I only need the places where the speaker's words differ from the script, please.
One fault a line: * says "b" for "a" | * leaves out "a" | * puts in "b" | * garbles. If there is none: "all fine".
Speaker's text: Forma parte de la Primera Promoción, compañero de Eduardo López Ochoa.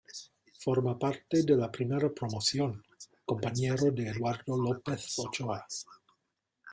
all fine